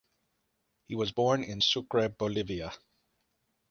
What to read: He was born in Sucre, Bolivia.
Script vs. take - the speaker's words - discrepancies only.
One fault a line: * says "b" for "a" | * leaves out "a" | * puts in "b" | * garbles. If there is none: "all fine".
all fine